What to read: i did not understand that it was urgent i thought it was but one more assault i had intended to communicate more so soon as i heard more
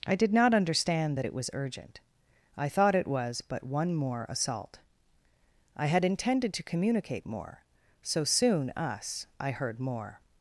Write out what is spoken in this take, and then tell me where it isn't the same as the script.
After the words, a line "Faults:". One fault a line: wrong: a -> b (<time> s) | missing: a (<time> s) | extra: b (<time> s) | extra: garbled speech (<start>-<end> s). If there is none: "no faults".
i did not understand that it was urgent i thought it was but one more assault i had intended to communicate more so soon us i heard more
Faults:
wrong: as -> us (8.8 s)